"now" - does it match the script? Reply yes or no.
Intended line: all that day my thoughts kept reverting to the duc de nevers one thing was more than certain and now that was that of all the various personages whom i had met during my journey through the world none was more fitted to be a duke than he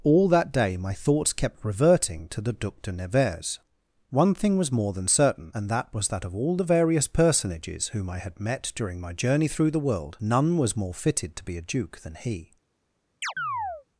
no